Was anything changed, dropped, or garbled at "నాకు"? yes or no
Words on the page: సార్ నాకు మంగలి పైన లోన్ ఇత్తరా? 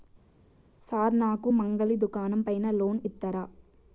no